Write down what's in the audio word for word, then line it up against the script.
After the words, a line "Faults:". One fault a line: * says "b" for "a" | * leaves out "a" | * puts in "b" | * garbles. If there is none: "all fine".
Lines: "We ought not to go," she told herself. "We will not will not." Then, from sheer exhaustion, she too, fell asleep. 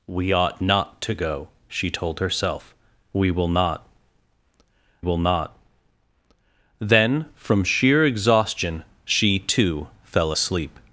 "We ought not to go," she told herself. "We will not will not." Then, from sheer exhaustion, she too, fell asleep.
Faults:
all fine